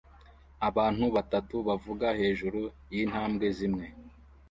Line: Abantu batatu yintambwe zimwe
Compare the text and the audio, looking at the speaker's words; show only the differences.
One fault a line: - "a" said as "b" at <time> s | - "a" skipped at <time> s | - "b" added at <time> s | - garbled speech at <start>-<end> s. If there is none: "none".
- "bavuga hejuru" added at 1.7 s